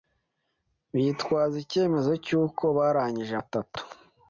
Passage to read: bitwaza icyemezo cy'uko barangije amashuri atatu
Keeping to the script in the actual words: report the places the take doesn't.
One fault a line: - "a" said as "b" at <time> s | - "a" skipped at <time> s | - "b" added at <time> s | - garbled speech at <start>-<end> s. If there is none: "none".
- "amashuri" skipped at 3.3 s